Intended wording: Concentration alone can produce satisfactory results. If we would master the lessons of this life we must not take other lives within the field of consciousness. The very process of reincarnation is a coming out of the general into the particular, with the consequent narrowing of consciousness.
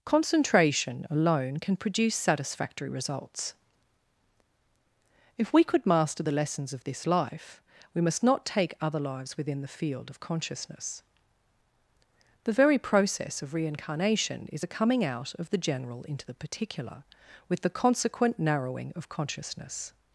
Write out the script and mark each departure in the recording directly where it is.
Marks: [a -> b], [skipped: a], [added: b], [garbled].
Concentration alone can produce satisfactory results. If we [would -> could] master the lessons of this life we must not take other lives within the field of consciousness. The very process of reincarnation is a coming out of the general into the particular, with the consequent narrowing of consciousness.